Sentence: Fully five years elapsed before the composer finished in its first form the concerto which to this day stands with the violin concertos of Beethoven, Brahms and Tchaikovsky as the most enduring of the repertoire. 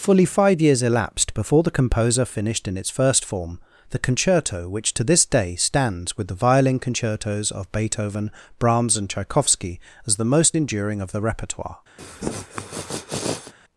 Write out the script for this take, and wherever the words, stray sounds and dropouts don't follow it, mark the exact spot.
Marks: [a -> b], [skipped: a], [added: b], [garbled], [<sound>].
Fully five years elapsed before the composer finished in its first form the concerto which to this day stands with the violin concertos of Beethoven, Brahms and Tchaikovsky as the most enduring of the repertoire. [sniff]